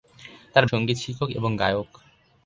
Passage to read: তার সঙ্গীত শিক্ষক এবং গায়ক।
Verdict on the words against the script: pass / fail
pass